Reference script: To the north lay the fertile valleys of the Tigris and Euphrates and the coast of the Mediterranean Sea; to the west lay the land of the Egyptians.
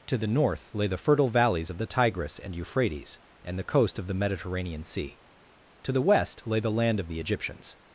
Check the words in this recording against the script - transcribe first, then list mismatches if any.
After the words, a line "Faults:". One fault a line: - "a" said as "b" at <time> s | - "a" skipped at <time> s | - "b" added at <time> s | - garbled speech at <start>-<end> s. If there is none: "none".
To the north lay the fertile valleys of the Tigris and Euphrates and the coast of the Mediterranean Sea; to the west lay the land of the Egyptians.
Faults:
none